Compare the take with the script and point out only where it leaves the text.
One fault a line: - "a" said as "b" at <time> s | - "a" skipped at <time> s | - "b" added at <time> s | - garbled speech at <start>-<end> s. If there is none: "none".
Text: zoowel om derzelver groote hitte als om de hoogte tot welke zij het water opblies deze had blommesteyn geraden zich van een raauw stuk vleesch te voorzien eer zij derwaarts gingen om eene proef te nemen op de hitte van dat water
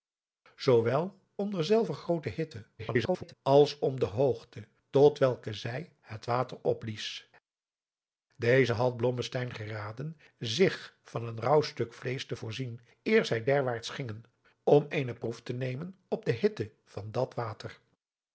- garbled speech at 2.8-3.3 s